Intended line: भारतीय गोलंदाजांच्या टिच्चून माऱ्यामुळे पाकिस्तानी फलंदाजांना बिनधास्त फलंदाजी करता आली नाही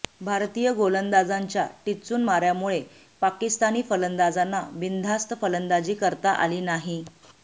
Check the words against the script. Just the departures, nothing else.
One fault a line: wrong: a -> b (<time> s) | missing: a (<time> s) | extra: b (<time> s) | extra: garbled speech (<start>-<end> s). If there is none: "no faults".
no faults